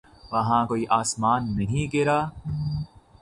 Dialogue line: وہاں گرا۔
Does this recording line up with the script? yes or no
no